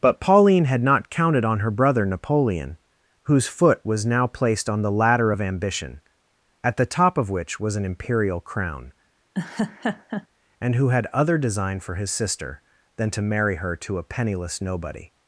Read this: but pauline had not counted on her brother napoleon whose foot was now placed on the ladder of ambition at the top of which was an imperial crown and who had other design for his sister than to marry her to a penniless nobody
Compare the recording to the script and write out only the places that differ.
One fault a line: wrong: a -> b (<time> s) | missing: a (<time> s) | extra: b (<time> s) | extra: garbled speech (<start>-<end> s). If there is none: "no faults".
no faults